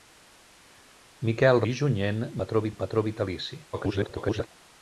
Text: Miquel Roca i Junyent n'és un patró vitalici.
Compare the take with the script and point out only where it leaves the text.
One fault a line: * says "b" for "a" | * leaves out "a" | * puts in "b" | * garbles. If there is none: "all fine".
* leaves out "Roca"
* says "patró" for "n'és"
* garbles